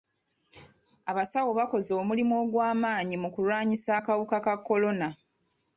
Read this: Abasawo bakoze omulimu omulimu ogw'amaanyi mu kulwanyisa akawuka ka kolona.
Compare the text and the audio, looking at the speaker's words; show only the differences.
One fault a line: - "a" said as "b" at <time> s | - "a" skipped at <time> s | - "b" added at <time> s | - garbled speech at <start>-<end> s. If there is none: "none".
- "omulimu" skipped at 2.3 s